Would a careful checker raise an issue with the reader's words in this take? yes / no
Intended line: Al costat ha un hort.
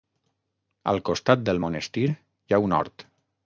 yes